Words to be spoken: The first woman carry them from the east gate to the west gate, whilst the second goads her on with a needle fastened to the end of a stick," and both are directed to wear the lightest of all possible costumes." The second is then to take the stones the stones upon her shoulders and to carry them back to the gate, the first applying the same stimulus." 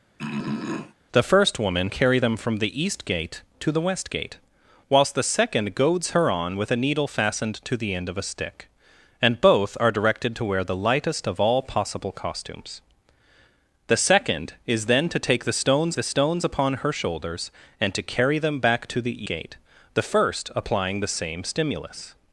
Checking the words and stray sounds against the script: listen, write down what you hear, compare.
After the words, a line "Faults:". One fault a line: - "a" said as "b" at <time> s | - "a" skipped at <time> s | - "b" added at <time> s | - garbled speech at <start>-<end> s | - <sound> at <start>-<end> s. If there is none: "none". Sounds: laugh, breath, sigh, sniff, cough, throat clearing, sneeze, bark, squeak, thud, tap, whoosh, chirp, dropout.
The first woman carry them from the east gate to the west gate, whilst the second goads her on with a needle fastened to the end of a stick," and both are directed to wear the lightest of all possible costumes." The second is then to take the stones the stones upon her shoulders and to carry them back to the gate, the first applying the same stimulus."
Faults:
- throat clearing at 0.2-0.9 s